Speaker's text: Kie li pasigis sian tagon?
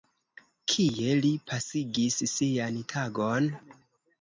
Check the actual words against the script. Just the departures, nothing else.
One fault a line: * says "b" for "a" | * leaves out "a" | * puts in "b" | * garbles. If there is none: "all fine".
all fine